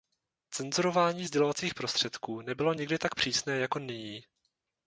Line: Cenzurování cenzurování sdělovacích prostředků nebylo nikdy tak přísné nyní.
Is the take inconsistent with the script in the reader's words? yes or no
yes